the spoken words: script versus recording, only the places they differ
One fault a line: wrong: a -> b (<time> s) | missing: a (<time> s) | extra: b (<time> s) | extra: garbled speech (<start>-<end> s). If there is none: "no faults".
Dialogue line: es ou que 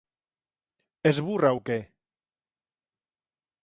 extra: burra (1.3 s)